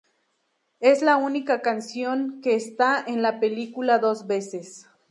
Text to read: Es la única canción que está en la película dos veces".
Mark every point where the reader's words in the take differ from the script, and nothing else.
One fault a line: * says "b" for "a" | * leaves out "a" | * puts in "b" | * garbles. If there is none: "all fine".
all fine